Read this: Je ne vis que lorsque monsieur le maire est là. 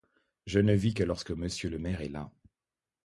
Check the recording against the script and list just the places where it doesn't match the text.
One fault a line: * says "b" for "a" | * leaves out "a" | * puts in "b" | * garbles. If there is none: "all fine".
all fine